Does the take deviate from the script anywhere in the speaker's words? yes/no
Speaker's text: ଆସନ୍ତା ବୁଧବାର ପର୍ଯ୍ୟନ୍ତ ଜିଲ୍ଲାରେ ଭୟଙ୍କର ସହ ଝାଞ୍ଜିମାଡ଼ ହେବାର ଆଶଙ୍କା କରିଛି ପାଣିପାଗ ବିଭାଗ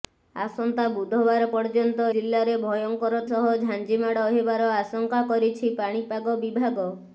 no